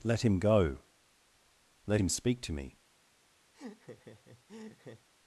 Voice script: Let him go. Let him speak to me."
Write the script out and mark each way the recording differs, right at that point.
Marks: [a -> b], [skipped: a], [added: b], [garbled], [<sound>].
Let him go. Let him speak to me." [laugh]